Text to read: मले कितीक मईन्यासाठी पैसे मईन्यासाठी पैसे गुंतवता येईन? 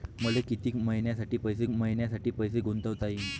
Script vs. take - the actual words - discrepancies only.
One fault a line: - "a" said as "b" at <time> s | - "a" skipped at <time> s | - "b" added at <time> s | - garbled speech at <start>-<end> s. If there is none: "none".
none